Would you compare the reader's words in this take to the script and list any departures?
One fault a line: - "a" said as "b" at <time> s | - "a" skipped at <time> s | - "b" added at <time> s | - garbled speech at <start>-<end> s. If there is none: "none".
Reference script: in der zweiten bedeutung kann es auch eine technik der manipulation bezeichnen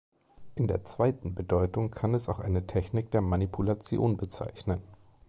none